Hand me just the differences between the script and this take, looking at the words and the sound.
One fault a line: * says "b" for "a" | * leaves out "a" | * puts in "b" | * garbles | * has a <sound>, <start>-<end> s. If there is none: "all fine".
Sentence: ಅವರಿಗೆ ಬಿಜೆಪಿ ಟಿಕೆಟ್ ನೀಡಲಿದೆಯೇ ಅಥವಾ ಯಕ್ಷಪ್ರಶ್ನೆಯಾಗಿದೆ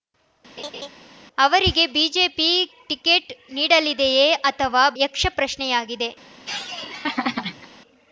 * has a laugh, 0.6-0.9 s
* has a laugh, 6.5-7.7 s